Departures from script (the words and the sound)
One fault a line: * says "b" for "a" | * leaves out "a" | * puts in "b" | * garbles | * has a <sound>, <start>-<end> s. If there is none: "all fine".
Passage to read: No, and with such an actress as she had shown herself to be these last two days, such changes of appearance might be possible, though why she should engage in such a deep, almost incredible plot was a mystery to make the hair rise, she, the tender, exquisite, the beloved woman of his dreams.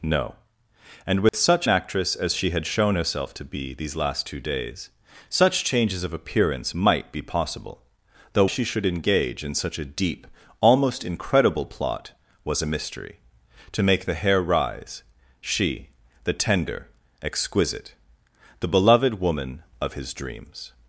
* has a dropout, 1.3-1.3 s
* leaves out "an"
* leaves out "why"